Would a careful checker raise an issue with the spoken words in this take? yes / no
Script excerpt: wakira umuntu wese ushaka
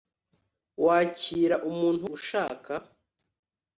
yes